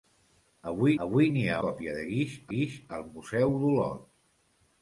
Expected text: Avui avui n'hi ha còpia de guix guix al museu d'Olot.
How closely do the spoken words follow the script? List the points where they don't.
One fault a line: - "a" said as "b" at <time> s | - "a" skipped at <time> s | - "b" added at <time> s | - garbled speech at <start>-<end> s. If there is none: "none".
none